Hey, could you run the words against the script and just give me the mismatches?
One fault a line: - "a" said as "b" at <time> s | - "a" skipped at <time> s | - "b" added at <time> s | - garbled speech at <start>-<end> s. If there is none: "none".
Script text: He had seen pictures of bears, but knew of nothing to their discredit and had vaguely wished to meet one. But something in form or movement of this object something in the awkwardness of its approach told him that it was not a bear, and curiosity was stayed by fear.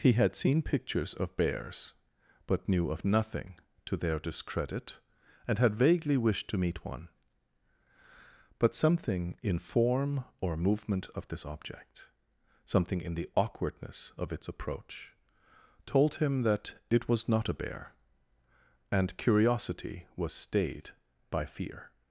none